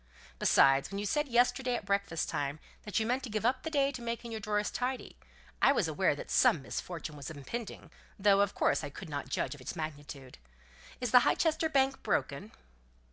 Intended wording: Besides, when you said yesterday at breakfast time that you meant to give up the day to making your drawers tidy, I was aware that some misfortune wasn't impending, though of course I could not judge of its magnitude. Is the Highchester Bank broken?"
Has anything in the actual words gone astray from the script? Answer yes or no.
yes